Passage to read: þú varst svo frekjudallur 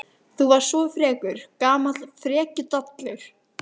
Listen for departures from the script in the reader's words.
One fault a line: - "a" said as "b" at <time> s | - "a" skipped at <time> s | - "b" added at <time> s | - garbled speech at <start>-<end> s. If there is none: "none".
- "frekur gamall" added at 0.9 s